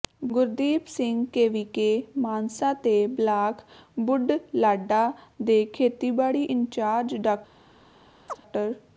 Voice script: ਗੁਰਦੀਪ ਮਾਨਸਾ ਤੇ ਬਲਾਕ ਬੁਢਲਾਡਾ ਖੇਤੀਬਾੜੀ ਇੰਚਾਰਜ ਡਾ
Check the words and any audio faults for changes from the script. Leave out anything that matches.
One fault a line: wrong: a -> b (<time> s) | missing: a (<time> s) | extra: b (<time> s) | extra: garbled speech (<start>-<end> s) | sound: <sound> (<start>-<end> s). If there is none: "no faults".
extra: ਸਿੰਘ ਕੇਵੀਕੇ (0.9 s)
extra: ਦੇ (5.4 s)
sound: chirp (8.3-8.4 s)